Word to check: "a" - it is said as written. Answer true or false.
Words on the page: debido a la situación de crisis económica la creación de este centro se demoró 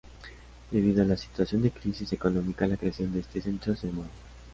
true